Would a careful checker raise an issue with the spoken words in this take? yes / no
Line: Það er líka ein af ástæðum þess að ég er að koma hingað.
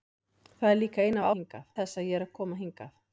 yes